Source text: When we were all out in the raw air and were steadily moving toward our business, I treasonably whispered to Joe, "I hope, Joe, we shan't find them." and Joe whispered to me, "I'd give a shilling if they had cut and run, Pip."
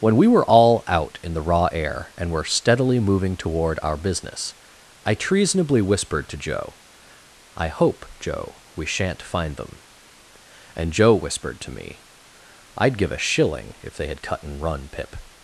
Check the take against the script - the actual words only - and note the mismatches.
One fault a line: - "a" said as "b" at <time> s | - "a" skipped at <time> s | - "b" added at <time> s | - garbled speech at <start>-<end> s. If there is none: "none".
none